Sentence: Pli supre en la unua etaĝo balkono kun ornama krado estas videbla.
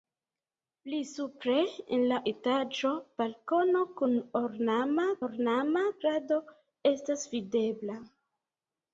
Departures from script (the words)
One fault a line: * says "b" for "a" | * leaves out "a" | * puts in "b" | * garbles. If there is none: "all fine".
* leaves out "unua"
* puts in "ornama"